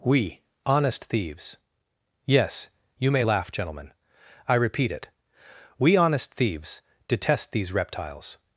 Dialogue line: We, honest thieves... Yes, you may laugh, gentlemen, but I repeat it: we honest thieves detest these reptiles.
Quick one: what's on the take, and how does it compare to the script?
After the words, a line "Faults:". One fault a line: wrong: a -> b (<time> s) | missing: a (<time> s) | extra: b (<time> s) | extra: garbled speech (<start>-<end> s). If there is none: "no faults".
We, honest thieves... Yes, you may laugh, gentlemen, I repeat it: we honest thieves detest these reptiles.
Faults:
missing: but (3.9 s)